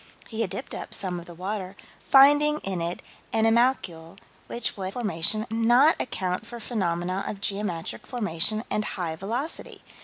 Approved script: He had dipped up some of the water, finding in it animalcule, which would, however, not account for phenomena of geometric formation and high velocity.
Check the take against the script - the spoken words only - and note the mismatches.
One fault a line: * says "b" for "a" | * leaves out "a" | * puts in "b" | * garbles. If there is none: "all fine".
* says "formation" for "however"